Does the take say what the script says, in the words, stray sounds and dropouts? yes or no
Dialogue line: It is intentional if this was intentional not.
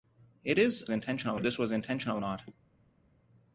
yes